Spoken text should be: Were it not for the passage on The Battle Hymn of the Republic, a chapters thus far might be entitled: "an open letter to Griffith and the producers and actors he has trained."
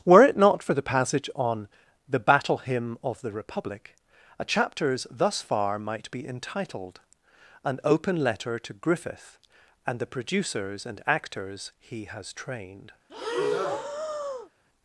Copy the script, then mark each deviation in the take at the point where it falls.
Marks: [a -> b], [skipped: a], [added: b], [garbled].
Were it not for the passage on The Battle Hymn of the Republic, a chapters thus far might be entitled: "an open letter to Griffith and the producers and actors he has trained."